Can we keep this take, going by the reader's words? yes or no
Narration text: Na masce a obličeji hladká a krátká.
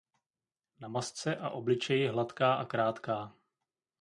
yes